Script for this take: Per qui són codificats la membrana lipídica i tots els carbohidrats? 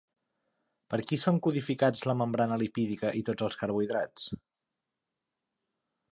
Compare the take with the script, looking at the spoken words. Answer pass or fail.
pass